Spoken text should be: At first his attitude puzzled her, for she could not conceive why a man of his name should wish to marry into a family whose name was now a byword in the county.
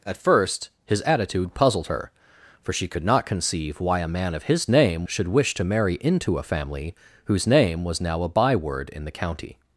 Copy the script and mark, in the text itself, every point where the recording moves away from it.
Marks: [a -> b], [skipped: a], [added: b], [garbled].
At first his attitude puzzled her, for she could not conceive why a man of his name should wish to marry into a family whose name was now a byword in the county.